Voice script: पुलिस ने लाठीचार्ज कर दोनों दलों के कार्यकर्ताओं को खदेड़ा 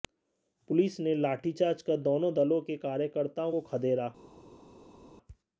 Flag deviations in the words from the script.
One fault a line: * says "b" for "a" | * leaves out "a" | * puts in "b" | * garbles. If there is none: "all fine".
all fine